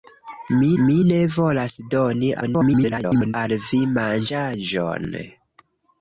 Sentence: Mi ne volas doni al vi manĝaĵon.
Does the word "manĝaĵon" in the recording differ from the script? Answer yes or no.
no